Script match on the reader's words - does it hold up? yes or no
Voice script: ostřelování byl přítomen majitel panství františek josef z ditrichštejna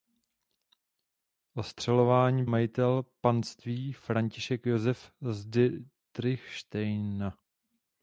no